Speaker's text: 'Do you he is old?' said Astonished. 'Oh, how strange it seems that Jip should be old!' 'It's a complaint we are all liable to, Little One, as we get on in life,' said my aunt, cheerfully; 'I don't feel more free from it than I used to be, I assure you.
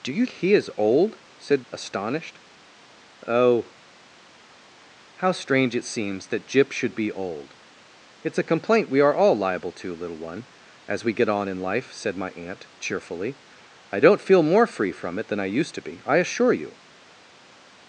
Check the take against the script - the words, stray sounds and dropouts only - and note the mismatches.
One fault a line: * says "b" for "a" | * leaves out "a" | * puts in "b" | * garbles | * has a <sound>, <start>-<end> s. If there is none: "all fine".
all fine